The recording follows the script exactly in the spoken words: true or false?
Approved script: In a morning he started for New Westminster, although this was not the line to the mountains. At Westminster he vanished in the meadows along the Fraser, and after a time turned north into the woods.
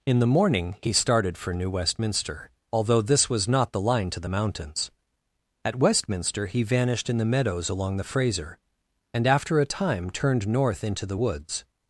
false